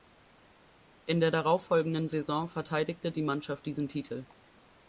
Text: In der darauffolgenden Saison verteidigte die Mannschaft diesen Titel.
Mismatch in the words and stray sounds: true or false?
false